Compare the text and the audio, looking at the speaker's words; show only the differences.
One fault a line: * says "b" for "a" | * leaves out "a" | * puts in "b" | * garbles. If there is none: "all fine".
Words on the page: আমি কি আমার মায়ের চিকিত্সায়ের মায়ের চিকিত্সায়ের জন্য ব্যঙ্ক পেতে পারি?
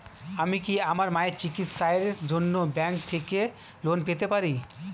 * says "জন্য ব্যঙ্ক থেকে লোন" for "মায়ের চিকিত্সায়ের জন্য ব্যঙ্ক"